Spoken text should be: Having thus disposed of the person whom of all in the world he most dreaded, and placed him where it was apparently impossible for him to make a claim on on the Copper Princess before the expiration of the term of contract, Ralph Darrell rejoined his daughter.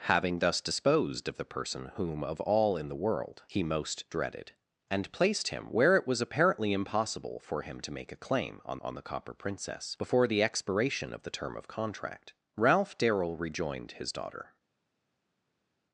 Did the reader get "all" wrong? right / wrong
right